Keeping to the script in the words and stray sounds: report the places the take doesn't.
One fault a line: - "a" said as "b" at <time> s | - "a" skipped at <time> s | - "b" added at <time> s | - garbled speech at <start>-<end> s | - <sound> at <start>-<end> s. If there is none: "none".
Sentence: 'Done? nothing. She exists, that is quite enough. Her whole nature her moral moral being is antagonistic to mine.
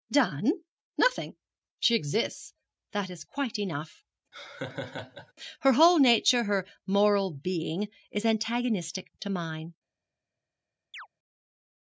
- laugh at 4.3-5.3 s
- "moral" skipped at 7.3 s
- chirp at 10.9-11.1 s